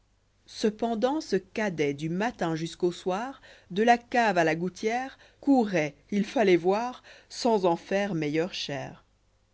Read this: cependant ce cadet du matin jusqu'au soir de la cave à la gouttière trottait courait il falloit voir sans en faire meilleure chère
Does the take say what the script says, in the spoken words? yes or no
no